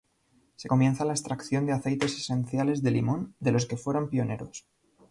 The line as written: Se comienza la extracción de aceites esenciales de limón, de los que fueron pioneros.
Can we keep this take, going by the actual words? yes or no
yes